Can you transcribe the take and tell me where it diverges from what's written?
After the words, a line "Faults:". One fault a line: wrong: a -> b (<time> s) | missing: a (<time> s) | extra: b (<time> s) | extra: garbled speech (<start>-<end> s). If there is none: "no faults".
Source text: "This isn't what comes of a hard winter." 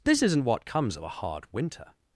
"This isn't what comes of a hard winter."
Faults:
no faults